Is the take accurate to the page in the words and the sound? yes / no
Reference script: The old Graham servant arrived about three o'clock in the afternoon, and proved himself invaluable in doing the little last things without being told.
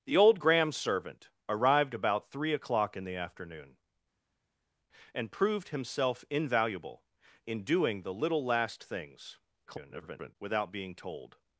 no